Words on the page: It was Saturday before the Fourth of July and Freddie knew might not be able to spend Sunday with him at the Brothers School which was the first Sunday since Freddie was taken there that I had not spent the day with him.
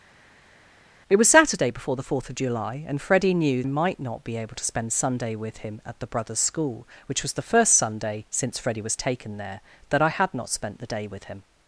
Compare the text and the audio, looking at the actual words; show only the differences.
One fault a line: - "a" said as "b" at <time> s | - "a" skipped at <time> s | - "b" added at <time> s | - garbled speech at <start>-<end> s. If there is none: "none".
none